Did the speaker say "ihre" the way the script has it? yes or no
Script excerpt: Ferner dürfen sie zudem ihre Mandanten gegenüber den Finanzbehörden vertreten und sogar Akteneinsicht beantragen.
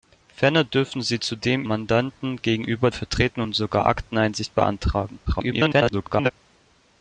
no